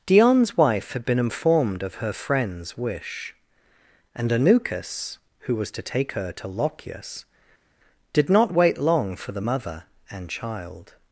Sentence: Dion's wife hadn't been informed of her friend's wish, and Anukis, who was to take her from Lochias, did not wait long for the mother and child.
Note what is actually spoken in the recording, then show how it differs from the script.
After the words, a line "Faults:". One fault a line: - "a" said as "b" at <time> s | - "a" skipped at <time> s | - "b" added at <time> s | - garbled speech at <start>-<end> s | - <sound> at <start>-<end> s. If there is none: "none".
Dion's wife had been informed of her friend's wish, and Anukis, who was to take her to Lochias, did not wait long for the mother and child.
Faults:
- "hadn't" said as "had" at 0.9 s
- "from" said as "to" at 6.3 s